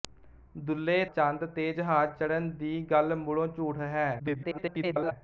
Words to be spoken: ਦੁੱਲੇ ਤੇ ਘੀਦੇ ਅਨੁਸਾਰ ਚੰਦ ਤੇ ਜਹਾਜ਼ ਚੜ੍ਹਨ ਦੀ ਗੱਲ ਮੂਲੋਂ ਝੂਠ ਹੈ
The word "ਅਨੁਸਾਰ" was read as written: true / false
false